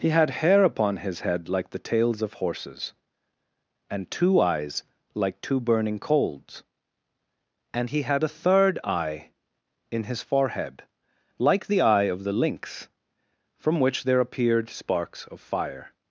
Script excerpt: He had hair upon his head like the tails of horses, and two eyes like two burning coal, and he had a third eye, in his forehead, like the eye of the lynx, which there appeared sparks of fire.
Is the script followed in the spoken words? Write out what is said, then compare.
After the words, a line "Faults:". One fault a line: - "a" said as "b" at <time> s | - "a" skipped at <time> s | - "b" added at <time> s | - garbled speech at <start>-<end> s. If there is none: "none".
He had hair upon his head like the tails of horses, and two eyes like two burning coals, and he had a third eye, in his forehead, like the eye of the lynx, from which there appeared sparks of fire.
Faults:
- "coal" said as "coals" at 6.0 s
- "from" added at 13.6 s